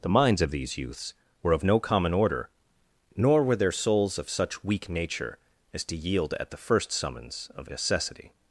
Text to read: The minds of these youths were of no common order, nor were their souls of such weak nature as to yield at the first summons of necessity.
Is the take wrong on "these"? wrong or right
right